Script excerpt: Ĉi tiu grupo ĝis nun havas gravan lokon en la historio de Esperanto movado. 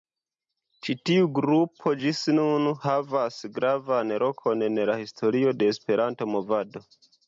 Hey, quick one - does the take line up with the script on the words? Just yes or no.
yes